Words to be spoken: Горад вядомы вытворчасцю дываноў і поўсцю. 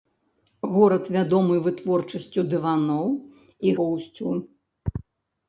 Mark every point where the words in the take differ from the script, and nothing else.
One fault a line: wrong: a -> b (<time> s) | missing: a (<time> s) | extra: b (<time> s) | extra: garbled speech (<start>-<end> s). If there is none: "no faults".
no faults